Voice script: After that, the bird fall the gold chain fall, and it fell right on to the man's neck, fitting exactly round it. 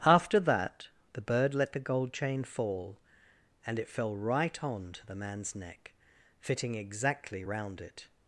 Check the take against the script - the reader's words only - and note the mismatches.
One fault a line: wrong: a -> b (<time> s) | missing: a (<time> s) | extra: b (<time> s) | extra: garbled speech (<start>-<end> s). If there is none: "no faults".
wrong: fall -> let (1.5 s)